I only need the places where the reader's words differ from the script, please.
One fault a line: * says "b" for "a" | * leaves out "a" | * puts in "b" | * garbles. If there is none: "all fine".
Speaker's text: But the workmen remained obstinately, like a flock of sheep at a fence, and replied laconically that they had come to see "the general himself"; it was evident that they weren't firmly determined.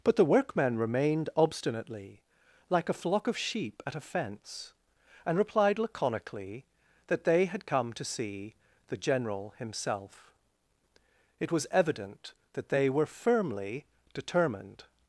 * says "were" for "weren't"